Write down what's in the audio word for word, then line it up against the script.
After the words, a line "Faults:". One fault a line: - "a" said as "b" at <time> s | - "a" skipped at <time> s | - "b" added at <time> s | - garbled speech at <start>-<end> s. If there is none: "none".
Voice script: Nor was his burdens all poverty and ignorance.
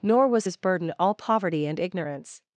Nor was his burden all poverty and ignorance.
Faults:
- "burdens" said as "burden" at 0.6 s